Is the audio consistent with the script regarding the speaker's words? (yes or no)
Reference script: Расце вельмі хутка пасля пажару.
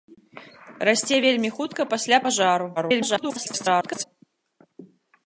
no